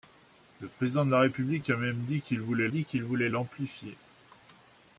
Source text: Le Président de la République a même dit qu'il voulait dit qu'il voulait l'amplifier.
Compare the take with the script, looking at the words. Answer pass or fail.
pass